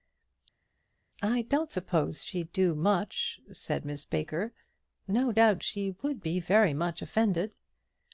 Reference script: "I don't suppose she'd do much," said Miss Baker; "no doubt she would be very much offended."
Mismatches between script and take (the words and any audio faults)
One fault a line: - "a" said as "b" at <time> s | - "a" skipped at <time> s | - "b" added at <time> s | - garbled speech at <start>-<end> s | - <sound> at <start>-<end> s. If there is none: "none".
none